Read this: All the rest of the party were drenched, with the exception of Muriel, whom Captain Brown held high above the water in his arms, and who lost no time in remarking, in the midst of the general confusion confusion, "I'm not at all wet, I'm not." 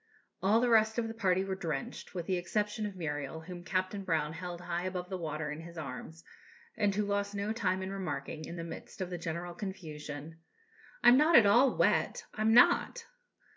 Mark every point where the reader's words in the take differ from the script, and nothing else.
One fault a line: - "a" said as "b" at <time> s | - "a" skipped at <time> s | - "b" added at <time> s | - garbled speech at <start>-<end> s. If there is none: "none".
- "confusion" skipped at 10.4 s